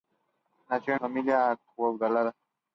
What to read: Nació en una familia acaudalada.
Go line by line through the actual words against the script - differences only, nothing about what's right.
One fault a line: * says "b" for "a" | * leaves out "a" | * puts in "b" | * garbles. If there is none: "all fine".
* leaves out "una"